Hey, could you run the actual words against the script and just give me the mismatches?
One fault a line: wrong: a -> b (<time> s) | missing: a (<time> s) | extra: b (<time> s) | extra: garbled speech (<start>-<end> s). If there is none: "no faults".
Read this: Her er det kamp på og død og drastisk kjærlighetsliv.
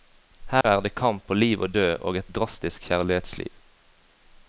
extra: liv (1.4 s)
extra: et (2.2 s)